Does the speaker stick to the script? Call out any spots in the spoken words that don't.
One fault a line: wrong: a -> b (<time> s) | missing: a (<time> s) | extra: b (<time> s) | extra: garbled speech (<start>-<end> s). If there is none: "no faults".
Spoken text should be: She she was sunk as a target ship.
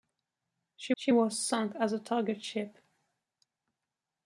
no faults